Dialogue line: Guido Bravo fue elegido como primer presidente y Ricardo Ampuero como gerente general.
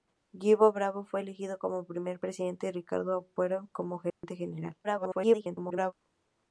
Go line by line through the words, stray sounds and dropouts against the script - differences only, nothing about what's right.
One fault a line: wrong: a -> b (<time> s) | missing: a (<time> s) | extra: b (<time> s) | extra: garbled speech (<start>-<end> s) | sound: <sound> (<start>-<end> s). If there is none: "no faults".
sound: dropout (4.1-4.2 s)
extra: garbled speech (4.8-5.9 s)